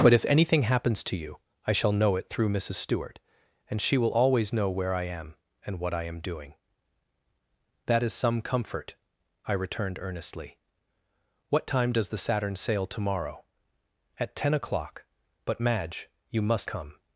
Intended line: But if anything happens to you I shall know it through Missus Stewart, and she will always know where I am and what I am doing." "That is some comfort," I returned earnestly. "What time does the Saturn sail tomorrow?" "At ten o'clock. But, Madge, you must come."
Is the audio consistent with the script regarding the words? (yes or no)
yes